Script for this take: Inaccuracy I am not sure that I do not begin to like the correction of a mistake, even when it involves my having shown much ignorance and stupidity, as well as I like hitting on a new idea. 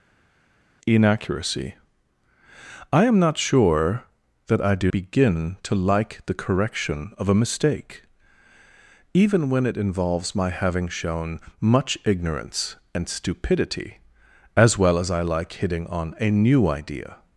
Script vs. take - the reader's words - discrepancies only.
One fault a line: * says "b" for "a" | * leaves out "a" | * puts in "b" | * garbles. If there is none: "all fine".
* leaves out "not"